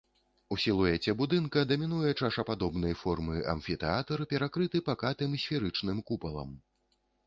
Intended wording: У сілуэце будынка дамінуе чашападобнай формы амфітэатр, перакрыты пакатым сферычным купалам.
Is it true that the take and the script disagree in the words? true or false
false